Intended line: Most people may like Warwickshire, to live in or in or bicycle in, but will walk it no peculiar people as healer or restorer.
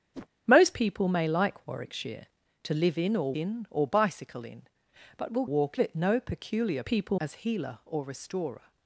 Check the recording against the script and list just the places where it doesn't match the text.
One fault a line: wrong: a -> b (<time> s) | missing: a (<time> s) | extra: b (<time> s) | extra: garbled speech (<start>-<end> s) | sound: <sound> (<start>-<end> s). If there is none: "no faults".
sound: whoosh (0.1-0.3 s)